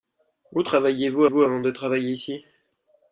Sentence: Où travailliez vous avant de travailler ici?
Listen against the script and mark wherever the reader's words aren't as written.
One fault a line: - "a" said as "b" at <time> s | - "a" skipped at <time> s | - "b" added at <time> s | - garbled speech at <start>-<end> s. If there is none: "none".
- "vous" added at 1.3 s